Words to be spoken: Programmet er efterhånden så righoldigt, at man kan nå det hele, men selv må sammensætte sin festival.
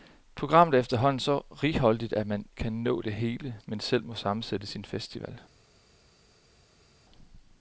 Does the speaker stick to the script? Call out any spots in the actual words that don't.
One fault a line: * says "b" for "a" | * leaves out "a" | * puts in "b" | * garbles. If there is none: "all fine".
all fine